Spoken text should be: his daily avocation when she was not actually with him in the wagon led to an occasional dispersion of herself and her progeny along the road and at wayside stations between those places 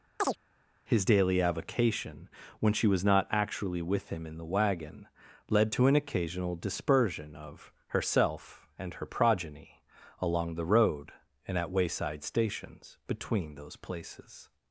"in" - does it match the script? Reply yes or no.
yes